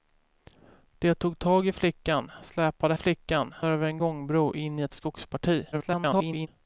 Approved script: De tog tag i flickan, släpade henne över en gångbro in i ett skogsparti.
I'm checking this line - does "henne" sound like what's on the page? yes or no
no